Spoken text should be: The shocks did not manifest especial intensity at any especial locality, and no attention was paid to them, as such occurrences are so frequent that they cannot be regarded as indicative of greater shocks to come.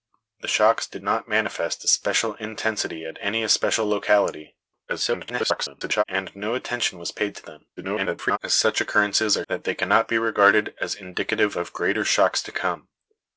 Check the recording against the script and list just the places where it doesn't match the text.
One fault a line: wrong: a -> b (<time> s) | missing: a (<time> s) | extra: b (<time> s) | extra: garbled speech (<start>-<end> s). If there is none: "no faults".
extra: garbled speech (4.9-6.0 s)
extra: garbled speech (7.8-8.4 s)
missing: so frequent (9.4 s)